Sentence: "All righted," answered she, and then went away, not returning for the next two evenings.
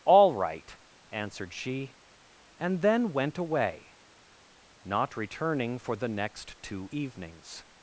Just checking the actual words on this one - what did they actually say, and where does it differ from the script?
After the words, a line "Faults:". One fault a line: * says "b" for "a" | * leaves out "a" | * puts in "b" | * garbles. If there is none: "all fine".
"All right," answered she, and then went away, not returning for the next two evenings.
Faults:
* says "right" for "righted"